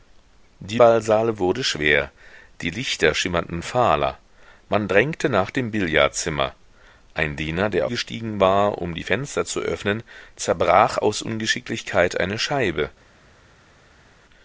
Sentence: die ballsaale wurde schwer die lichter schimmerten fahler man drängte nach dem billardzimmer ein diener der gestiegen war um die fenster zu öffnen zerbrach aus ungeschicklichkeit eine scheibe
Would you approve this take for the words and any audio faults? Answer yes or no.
yes